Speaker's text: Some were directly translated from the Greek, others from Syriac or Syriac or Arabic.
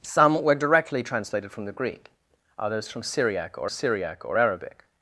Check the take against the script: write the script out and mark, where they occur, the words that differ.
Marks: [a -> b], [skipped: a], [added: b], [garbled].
Some were directly translated from the Greek, others from Syriac or Syriac or Arabic.